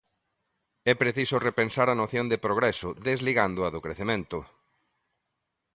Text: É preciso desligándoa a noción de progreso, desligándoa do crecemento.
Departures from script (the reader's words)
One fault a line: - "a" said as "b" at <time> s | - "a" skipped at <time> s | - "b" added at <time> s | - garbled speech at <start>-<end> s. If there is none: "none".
- "desligándoa" said as "repensar" at 1.5 s